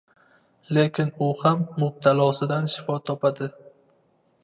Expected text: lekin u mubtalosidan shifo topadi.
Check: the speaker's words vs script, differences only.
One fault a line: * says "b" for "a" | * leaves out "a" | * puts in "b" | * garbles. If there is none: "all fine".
* puts in "ham"